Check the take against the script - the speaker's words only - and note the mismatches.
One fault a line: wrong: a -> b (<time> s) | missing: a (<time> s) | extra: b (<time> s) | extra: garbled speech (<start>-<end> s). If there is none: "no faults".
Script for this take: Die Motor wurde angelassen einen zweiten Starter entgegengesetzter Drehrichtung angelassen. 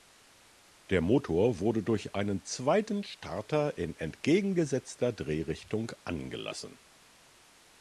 wrong: Die -> Der (0.9 s)
wrong: angelassen -> durch (1.8 s)
extra: in (3.8 s)